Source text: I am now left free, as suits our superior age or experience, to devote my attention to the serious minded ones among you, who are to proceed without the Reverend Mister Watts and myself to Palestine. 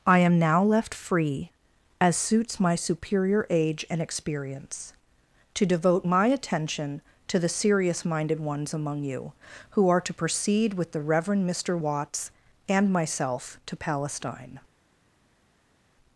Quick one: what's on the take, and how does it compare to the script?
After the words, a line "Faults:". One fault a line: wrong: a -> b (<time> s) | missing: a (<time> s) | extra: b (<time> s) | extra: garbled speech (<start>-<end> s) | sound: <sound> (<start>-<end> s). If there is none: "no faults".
I am now left free, as suits my superior age and experience, to devote my attention to the serious minded ones among you, who are to proceed with the Reverend Mister Watts and myself to Palestine.
Faults:
wrong: our -> my (2.6 s)
wrong: or -> and (3.9 s)
wrong: without -> with (10.7 s)